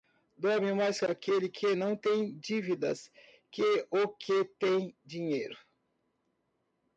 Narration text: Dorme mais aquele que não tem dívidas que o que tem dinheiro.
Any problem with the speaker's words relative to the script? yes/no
no